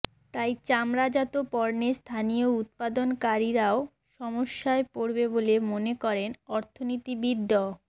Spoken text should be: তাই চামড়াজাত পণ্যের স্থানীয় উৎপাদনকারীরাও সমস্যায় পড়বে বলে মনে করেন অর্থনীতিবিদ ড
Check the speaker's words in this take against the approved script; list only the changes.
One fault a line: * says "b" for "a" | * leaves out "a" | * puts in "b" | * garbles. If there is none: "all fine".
all fine